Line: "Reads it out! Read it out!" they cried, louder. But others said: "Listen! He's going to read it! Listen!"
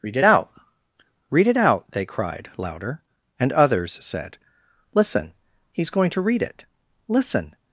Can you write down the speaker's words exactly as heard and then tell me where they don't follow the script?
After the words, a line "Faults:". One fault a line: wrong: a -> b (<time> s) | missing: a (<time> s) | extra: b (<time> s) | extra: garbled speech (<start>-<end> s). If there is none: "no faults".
"Read it out! Read it out!" they cried, louder. And others said: "Listen! He's going to read it! Listen!"
Faults:
wrong: Reads -> Read (0.0 s)
wrong: But -> And (3.4 s)